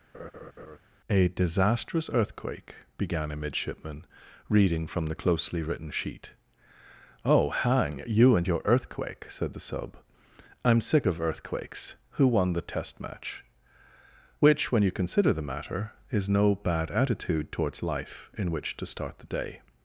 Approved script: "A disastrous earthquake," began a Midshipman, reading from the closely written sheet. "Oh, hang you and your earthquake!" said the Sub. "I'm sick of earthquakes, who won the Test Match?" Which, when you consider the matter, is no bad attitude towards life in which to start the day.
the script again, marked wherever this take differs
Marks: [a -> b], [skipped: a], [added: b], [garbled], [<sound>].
[laugh] "A disastrous earthquake," began a Midshipman, reading from the closely written sheet. "Oh, hang you and your earthquake!" said the Sub. "I'm sick of earthquakes, who won the Test Match?" Which, when you consider the matter, is no bad attitude towards life in which to start the day.